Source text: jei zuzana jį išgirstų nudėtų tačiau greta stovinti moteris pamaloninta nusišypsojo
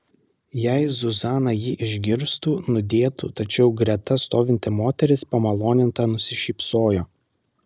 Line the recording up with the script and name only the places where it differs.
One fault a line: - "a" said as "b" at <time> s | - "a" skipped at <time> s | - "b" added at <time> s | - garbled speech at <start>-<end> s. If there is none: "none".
none